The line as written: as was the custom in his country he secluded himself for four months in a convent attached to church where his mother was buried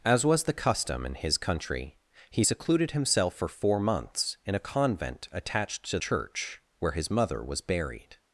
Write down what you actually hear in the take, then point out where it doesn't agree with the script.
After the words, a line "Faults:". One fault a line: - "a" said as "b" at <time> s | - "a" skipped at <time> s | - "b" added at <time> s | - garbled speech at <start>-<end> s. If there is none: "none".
as was the custom in his country he secluded himself for four months in a convent attached to church where his mother was buried
Faults:
none